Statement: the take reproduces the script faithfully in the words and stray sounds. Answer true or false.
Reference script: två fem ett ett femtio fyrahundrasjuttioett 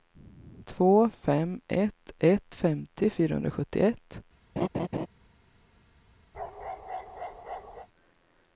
false